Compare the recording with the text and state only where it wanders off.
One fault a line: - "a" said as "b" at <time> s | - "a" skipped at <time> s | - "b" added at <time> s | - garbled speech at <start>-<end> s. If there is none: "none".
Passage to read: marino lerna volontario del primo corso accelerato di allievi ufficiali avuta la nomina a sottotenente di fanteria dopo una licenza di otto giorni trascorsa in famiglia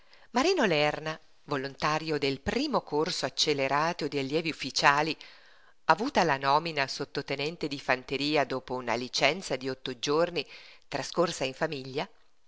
none